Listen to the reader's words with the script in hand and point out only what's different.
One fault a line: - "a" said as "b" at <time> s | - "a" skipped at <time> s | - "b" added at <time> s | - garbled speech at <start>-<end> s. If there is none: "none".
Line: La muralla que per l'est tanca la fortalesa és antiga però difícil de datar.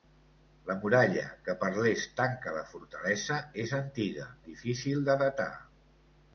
- "però" skipped at 4.2 s